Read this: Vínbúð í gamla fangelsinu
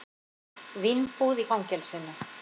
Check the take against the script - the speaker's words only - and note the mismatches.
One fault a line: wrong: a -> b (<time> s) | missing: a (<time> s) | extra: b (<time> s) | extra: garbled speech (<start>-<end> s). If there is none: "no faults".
missing: gamla (1.5 s)